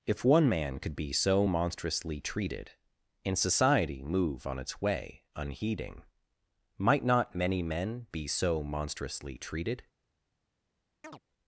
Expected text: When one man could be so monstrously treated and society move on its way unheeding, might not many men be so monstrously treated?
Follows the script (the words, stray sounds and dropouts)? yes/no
no